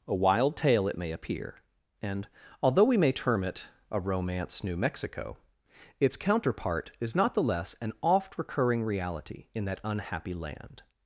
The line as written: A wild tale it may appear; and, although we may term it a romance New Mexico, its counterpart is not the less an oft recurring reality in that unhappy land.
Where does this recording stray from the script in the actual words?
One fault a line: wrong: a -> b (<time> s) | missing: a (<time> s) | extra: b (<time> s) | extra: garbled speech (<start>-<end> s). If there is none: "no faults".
no faults